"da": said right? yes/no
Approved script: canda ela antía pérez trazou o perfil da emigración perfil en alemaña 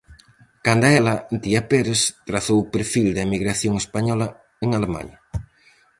yes